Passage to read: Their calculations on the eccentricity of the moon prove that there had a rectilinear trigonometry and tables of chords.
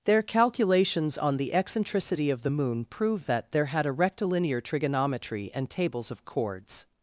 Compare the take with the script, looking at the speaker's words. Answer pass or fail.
pass